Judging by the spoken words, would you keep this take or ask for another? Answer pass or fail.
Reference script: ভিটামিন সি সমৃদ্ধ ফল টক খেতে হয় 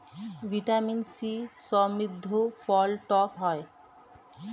fail